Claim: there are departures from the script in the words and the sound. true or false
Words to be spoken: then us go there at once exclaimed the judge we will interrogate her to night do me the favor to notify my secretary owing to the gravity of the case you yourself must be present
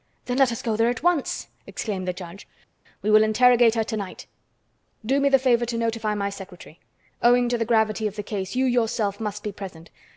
true